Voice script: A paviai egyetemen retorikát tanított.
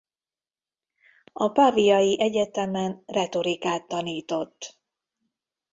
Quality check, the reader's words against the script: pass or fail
pass